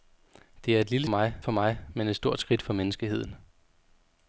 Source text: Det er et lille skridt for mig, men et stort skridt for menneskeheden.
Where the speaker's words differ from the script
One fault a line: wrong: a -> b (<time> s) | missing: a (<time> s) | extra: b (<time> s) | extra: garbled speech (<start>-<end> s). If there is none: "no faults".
wrong: skridt -> mig (1.1 s)